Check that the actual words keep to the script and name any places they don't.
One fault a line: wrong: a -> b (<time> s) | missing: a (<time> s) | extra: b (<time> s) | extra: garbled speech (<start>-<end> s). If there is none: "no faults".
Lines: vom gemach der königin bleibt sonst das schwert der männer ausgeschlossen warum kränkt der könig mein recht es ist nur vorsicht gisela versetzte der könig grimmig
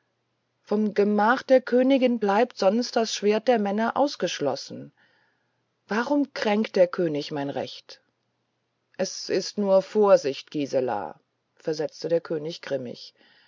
no faults